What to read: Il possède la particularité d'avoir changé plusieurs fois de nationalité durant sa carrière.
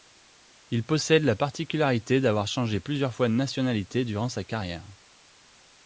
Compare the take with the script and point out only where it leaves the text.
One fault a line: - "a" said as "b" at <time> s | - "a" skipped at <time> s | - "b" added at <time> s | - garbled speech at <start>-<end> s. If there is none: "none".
none